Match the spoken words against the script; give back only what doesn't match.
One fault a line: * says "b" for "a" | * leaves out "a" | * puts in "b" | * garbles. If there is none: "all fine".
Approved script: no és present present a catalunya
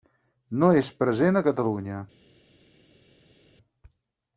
* leaves out "present"